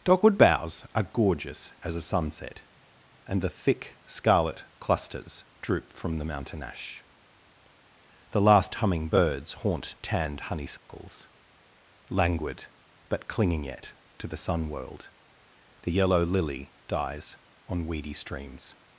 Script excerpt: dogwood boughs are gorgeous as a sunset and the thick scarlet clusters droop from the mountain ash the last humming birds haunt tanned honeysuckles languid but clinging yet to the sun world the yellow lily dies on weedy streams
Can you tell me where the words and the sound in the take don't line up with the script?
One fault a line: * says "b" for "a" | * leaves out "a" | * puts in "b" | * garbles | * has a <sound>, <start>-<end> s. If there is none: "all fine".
* has a dropout, 10.8-10.9 s